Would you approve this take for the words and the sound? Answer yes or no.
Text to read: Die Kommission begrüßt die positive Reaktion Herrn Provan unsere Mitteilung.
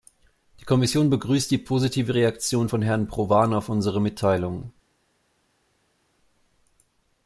no